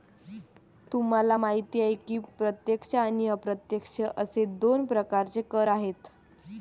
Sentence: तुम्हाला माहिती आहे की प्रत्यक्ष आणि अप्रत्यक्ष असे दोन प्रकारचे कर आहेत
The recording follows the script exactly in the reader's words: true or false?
true